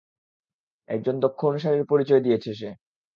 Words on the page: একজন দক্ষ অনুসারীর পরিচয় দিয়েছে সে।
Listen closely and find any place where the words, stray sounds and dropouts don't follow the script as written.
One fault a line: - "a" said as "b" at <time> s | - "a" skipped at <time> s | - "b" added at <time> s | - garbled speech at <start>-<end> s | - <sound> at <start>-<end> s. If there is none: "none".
none